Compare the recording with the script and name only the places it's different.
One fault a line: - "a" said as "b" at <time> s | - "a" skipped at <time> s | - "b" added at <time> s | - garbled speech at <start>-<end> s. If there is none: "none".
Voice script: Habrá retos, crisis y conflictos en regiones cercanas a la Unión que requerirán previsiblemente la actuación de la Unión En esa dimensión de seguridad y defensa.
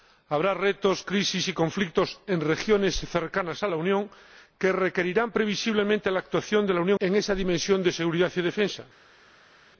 none